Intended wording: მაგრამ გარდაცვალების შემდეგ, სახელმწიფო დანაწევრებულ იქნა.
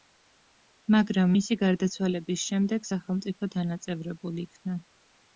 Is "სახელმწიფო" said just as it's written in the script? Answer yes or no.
yes